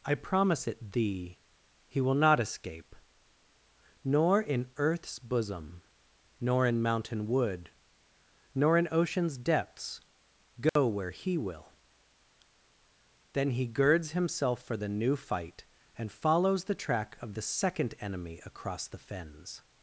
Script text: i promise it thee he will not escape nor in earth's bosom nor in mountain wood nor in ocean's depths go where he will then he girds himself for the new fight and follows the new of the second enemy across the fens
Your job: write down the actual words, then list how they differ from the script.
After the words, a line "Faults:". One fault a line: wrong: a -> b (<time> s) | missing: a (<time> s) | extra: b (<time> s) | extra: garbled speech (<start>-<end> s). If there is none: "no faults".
i promise it thee he will not escape nor in earth's bosom nor in mountain wood nor in ocean's depths go where he will then he girds himself for the new fight and follows the track of the second enemy across the fens
Faults:
wrong: new -> track (16.8 s)